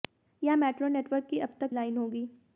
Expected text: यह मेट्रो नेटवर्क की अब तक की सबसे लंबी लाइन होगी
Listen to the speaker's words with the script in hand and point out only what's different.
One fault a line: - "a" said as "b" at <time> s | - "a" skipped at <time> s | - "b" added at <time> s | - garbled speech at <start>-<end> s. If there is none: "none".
- "की सबसे लंबी" skipped at 1.7 s